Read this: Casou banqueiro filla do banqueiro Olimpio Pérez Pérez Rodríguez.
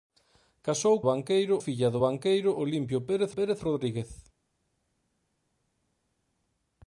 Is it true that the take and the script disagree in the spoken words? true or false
false